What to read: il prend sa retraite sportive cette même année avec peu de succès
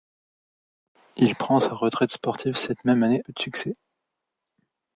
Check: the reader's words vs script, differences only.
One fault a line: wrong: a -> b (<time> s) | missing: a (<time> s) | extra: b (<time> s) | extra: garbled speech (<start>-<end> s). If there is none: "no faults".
missing: avec (3.2 s)